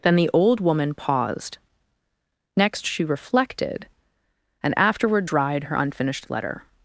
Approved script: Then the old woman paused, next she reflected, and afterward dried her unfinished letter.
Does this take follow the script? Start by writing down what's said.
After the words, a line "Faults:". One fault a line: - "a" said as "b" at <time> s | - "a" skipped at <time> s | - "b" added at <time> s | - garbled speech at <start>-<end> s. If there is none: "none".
Then the old woman paused, next she reflected, and afterward dried her unfinished letter.
Faults:
none